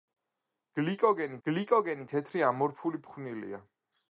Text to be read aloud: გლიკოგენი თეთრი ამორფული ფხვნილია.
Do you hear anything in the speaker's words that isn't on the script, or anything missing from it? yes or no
yes